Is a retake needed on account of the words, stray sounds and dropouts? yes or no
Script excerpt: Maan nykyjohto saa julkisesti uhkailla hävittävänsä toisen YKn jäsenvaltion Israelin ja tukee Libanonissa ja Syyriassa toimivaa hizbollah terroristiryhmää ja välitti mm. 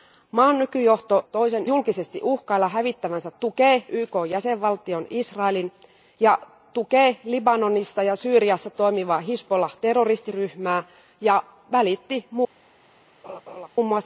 yes